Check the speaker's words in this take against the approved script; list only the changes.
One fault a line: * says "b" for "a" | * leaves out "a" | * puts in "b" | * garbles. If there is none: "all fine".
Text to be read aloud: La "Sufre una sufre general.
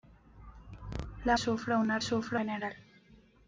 all fine